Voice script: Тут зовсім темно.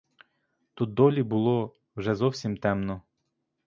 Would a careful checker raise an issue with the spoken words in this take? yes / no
yes